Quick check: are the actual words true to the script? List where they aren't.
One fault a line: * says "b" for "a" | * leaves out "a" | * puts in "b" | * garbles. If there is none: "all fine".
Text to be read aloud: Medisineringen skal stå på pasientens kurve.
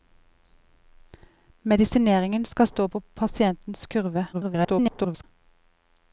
* garbles